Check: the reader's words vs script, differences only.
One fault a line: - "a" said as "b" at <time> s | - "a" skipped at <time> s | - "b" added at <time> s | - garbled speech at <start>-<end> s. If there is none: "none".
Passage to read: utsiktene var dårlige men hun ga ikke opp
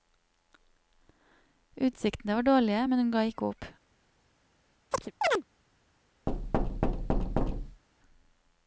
none